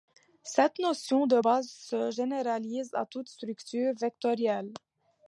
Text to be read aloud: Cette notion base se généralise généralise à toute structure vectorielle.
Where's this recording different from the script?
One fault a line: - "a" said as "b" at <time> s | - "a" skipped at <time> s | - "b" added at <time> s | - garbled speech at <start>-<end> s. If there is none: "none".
- "de" added at 1.3 s
- "généralise" skipped at 2.9 s